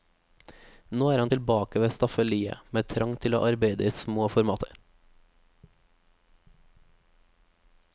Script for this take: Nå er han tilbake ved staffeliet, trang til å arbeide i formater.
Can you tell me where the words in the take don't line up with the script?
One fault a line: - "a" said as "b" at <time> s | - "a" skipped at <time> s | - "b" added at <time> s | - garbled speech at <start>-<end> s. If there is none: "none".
- "med" added at 2.7 s
- "små" added at 3.9 s